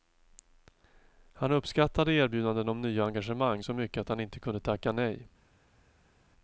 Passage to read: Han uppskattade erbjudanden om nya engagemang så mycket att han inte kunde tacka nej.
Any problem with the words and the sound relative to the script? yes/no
no